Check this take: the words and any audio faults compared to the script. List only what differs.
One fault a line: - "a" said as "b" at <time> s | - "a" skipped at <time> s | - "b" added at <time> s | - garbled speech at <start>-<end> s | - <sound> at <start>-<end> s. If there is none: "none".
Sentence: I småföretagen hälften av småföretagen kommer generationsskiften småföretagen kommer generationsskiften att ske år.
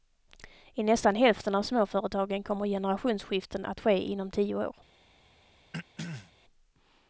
- "småföretagen" said as "nästan" at 0.8 s
- "småföretagen kommer generationsskiften att ske" said as "att ske inom tio" at 3.6 s
- throat clearing at 5.7-6.3 s